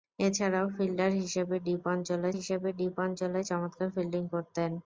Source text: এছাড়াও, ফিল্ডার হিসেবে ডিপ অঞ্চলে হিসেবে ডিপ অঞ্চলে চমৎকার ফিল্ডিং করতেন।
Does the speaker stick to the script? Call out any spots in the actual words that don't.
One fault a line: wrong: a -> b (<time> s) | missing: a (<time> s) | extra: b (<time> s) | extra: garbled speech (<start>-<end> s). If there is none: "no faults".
no faults